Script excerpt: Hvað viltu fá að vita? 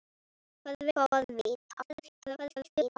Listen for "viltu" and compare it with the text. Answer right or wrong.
wrong